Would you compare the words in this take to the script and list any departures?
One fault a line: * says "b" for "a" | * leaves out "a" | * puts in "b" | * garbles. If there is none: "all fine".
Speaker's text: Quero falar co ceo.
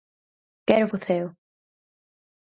* leaves out "falar"